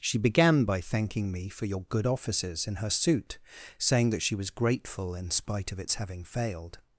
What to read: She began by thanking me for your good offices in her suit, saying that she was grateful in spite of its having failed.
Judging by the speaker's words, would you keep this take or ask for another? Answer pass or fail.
pass